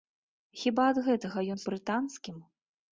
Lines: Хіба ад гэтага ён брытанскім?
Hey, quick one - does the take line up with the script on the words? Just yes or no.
yes